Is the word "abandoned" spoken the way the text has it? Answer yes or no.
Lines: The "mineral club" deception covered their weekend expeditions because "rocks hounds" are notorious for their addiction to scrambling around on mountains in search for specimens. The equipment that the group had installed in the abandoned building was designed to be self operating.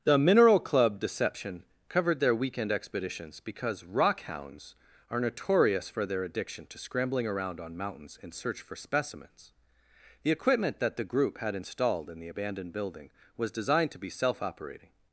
yes